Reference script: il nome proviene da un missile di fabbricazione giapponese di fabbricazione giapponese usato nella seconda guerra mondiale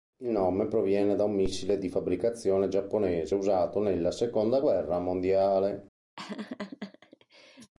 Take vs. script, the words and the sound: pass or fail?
fail